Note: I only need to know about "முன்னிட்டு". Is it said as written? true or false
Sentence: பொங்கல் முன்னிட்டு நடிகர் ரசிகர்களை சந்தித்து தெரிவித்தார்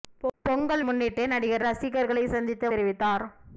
true